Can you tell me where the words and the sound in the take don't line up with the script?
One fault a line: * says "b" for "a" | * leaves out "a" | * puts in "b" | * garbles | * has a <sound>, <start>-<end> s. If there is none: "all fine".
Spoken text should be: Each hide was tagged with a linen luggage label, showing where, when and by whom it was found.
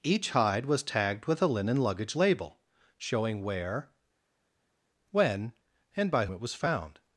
* leaves out "whom"